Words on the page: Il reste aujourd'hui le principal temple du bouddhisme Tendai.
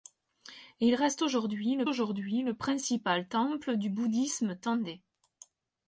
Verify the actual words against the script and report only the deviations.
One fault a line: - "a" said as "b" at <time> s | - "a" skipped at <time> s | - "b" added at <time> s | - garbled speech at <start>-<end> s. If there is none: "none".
- "aujourd'hui le" added at 1.9 s